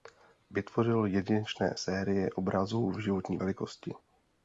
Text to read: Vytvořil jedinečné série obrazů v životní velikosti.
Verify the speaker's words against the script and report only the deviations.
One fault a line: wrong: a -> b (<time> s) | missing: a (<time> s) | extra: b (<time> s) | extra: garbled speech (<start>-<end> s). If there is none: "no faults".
no faults